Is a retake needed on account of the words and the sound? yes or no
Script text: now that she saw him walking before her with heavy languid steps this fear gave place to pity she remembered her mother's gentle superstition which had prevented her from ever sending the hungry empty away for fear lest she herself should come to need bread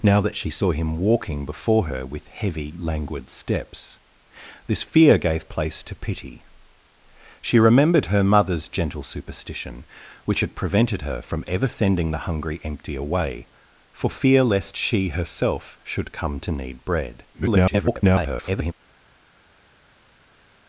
yes